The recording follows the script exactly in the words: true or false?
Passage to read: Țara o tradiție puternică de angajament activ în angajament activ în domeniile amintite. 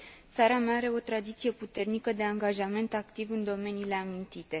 false